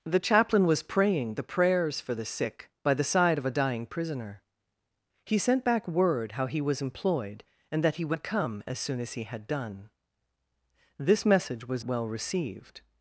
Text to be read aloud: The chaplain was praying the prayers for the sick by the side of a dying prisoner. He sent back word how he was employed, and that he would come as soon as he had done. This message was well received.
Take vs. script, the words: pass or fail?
pass